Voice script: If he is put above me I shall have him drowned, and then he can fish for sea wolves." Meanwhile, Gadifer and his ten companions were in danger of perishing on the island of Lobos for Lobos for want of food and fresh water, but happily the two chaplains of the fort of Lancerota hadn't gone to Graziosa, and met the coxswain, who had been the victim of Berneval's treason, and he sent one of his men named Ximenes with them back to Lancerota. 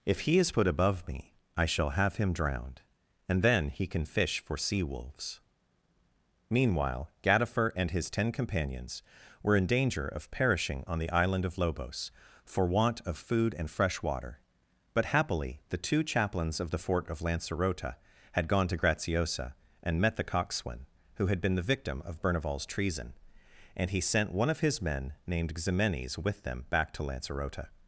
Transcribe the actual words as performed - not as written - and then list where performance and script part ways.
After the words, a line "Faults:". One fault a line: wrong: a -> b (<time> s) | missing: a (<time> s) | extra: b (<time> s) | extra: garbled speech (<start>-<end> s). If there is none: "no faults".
If he is put above me I shall have him drowned, and then he can fish for sea wolves." Meanwhile, Gadifer and his ten companions were in danger of perishing on the island of Lobos for want of food and fresh water, but happily the two chaplains of the fort of Lancerota had gone to Graziosa, and met the coxswain, who had been the victim of Berneval's treason, and he sent one of his men named Ximenes with them back to Lancerota.
Faults:
missing: Lobos for (12.6 s)
wrong: hadn't -> had (18.3 s)